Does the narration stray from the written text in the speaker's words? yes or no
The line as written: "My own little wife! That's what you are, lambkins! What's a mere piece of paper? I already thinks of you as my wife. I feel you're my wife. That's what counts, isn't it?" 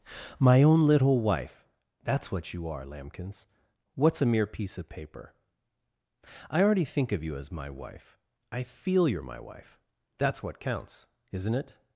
yes